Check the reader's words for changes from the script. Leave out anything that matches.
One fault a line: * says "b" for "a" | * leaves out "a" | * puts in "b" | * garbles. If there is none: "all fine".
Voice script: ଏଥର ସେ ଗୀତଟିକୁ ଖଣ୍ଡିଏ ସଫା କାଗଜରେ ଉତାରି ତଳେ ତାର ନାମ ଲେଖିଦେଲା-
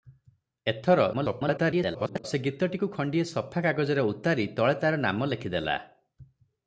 * garbles